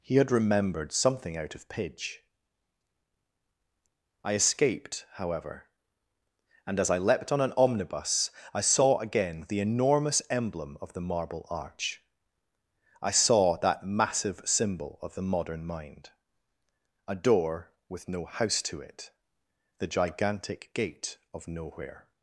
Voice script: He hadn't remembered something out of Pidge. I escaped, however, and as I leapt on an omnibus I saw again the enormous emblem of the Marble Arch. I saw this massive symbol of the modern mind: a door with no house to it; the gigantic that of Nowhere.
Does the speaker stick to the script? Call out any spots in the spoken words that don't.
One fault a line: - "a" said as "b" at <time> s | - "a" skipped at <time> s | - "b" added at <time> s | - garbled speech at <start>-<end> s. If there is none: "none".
- "hadn't" said as "had" at 0.1 s
- "this" said as "that" at 13.6 s
- "that" said as "gate" at 20.7 s